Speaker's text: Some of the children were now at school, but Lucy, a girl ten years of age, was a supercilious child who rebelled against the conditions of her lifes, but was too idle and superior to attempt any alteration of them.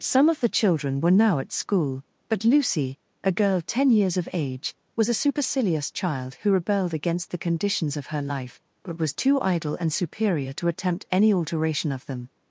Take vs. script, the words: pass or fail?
fail